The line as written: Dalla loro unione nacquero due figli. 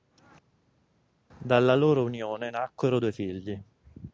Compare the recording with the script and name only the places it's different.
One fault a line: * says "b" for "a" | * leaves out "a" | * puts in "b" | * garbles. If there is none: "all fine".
all fine